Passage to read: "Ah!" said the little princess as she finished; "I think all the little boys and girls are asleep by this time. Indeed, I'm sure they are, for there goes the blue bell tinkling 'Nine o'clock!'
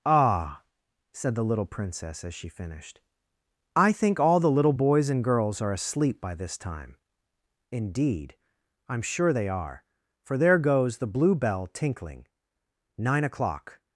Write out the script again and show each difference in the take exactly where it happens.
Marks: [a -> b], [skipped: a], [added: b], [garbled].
"Ah!" said the little princess as she finished; "I think all the little boys and girls are asleep by this time. Indeed, I'm sure they are, for there goes the blue bell tinkling 'Nine o'clock!'